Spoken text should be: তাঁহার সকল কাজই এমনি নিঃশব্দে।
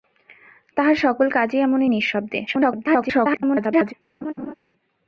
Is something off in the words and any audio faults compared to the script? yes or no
yes